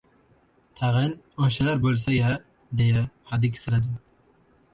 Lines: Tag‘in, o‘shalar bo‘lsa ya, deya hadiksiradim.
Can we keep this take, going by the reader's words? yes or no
yes